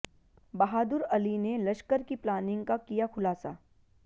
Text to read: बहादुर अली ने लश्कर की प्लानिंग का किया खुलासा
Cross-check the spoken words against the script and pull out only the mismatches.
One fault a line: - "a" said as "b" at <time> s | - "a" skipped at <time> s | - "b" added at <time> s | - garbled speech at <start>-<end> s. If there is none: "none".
none